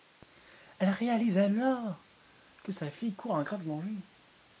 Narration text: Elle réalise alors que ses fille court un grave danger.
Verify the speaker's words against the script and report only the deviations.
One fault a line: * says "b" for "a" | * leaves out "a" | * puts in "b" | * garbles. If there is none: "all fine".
* says "sa" for "ses"